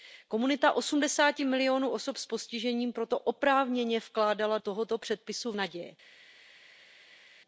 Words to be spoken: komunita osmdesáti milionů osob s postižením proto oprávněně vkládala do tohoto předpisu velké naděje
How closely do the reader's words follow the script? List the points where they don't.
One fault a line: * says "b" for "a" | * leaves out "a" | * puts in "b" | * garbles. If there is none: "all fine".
* leaves out "do"
* leaves out "velké"